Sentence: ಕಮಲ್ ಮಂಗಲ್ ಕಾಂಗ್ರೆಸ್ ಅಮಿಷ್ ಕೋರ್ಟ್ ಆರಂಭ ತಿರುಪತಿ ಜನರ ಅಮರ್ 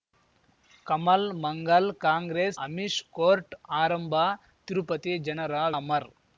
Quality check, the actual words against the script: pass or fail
pass